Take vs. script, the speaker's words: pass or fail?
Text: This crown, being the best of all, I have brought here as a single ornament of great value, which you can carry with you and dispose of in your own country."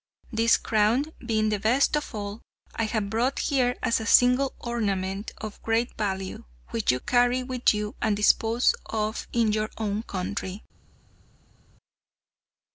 fail